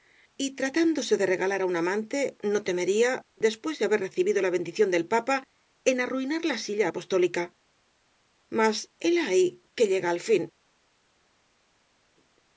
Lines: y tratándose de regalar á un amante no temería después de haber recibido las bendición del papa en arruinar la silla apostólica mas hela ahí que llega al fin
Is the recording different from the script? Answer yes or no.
yes